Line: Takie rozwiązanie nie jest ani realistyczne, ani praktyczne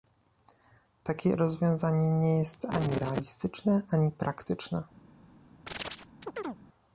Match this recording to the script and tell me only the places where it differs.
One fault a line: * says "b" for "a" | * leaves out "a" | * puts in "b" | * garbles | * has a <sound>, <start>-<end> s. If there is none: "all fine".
* has a chirp, 5.7-6.6 s